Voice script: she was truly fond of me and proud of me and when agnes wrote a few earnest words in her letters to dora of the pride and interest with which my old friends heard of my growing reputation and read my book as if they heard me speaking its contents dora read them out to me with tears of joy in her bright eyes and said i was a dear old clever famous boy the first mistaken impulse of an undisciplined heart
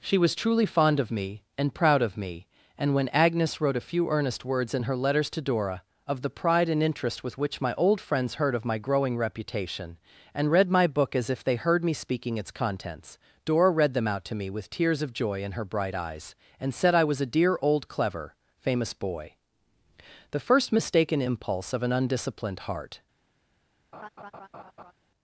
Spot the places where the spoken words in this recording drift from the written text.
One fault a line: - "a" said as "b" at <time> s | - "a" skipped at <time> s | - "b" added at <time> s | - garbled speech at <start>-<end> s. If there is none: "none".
none